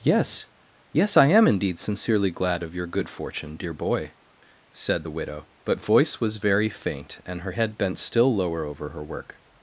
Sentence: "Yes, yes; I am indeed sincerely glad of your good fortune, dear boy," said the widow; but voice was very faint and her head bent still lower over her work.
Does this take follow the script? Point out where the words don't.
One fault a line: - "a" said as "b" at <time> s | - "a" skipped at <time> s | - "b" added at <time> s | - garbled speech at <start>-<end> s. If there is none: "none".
none